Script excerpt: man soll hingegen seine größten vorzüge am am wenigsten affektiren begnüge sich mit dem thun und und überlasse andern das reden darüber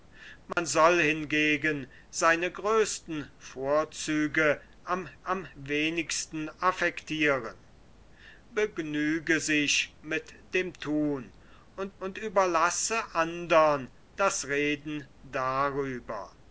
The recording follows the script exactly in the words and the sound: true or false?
false